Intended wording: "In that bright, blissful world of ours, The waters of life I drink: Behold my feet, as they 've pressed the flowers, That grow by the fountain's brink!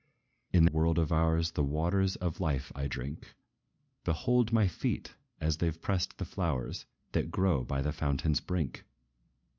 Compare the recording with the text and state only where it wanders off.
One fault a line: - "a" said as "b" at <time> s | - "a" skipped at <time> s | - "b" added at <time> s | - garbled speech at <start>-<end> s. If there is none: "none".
- "that bright blissful" skipped at 0.7 s